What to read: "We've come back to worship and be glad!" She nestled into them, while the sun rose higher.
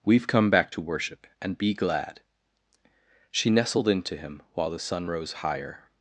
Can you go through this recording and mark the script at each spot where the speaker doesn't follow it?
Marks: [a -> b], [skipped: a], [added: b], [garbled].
"We've come back to worship and be glad!" She nestled into [them, -> him] while the sun rose higher.